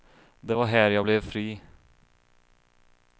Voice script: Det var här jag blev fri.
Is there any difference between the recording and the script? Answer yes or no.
no